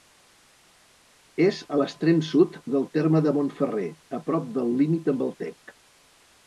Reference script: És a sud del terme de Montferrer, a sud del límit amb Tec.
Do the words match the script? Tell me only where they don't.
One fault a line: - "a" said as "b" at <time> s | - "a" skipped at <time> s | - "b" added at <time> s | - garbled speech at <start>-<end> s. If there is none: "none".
- "l'extrem" added at 1.8 s
- "sud" said as "prop" at 4.3 s
- "el" added at 5.3 s